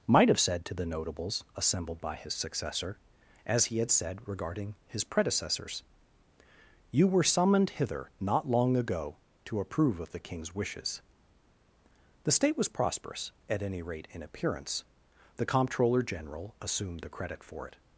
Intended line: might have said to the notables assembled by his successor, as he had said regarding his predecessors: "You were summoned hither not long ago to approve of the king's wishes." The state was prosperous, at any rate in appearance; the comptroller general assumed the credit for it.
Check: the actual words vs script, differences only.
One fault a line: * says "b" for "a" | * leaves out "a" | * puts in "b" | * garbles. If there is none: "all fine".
all fine